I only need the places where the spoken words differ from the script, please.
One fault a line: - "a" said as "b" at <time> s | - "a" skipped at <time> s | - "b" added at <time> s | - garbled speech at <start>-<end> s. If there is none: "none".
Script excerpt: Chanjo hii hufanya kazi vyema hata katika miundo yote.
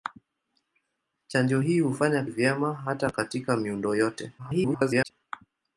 - "kazi" skipped at 2.2 s
- garbled speech at 4.4-5.1 s